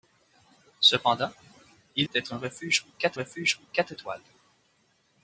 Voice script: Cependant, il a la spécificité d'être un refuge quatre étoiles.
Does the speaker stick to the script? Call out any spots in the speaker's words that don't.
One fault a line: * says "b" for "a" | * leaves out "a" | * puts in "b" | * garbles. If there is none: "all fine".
* says "d'être un refuge quatre" for "a la spécificité d'être un"